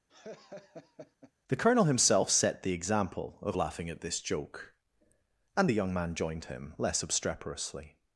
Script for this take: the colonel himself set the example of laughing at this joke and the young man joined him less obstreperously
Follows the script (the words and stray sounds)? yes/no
no